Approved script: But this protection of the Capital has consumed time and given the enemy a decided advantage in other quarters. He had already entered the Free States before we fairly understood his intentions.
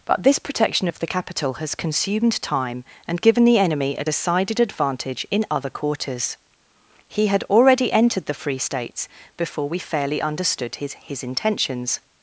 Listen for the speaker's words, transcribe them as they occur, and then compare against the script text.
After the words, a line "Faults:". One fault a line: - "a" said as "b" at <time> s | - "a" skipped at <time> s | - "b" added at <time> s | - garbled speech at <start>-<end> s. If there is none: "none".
But this protection of the Capital has consumed time and given the enemy a decided advantage in other quarters. He had already entered the Free States before we fairly understood his his intentions.
Faults:
- "his" added at 10.9 s